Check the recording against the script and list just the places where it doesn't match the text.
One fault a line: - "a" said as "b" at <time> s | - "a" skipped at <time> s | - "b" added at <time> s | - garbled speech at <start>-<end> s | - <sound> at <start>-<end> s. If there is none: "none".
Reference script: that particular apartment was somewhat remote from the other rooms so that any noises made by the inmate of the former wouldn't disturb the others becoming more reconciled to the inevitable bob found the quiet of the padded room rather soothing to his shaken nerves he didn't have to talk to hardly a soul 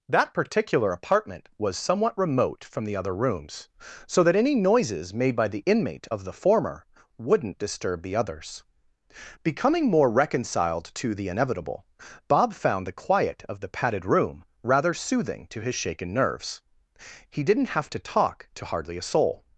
none